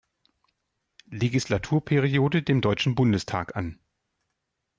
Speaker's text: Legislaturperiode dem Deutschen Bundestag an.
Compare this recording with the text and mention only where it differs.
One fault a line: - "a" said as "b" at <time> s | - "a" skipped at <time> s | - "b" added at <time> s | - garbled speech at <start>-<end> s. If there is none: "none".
none